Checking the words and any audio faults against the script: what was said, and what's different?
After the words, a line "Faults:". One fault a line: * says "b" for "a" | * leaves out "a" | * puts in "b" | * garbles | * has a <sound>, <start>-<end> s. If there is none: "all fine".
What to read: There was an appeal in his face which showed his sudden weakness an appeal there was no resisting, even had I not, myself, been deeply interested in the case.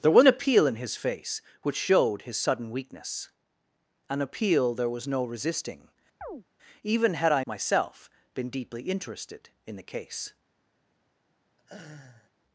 There an appeal in his face which showed his sudden weakness an appeal there was no resisting, even had I myself, been deeply interested in the case.
Faults:
* leaves out "was"
* has a chirp, 6.2-6.4 s
* leaves out "not"
* has a laugh, 11.6-12.3 s